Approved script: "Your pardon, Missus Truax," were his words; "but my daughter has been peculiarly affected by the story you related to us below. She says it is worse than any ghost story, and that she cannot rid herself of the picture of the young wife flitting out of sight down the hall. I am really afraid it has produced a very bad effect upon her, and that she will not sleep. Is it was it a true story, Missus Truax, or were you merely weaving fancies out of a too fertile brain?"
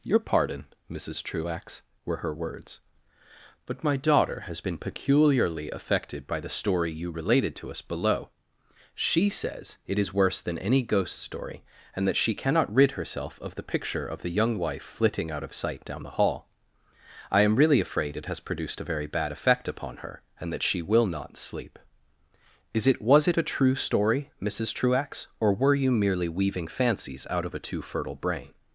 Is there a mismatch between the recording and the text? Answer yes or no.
yes